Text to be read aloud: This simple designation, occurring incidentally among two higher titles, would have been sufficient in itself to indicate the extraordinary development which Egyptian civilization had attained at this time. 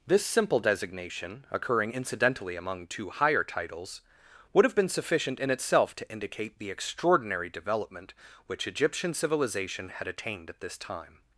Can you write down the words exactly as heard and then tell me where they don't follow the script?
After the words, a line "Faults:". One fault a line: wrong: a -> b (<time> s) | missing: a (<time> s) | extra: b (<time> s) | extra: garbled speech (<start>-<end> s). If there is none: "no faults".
This simple designation, occurring incidentally among two higher titles, would have been sufficient in itself to indicate the extraordinary development which Egyptian civilization had attained at this time.
Faults:
no faults